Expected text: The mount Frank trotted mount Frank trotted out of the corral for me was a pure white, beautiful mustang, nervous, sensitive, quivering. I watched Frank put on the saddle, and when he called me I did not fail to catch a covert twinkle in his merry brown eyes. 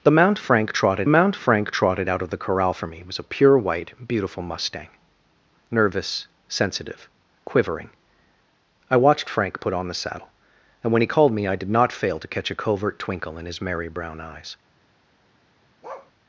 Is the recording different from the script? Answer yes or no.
no